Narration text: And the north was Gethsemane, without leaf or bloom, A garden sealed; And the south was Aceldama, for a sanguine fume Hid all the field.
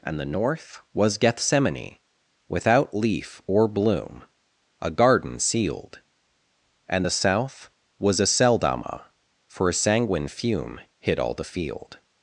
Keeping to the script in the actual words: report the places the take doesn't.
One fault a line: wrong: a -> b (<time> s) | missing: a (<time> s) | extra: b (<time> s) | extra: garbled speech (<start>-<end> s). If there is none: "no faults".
no faults